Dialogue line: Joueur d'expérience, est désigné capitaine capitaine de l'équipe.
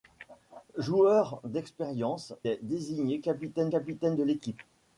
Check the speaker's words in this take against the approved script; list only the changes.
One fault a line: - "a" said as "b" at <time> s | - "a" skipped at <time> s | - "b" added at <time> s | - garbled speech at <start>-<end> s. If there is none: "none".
none